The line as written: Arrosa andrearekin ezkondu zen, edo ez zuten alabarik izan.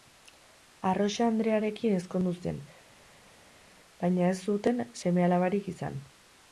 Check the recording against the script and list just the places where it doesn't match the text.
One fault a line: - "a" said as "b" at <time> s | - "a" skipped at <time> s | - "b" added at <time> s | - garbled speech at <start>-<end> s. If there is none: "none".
- "edo" said as "baina" at 4.0 s
- "seme" added at 5.0 s